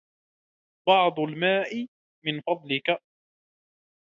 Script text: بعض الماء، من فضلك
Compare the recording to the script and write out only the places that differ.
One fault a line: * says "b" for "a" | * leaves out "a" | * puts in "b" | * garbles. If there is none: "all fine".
all fine